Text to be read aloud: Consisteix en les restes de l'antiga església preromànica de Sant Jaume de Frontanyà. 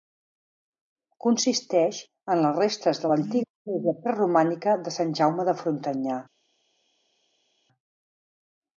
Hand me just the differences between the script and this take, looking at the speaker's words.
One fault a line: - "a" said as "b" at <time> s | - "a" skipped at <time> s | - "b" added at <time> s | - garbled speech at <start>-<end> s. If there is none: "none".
none